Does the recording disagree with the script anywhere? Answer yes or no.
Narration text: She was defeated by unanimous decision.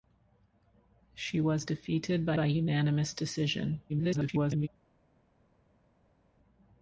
yes